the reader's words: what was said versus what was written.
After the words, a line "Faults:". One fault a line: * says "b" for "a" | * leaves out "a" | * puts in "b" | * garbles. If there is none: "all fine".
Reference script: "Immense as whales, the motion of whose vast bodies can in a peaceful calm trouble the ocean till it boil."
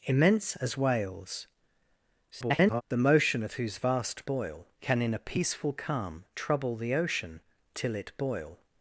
"Immense as whales, [garbled] the motion of whose vast boil can in a peaceful calm trouble the ocean till it boil."
Faults:
* garbles
* says "boil" for "bodies"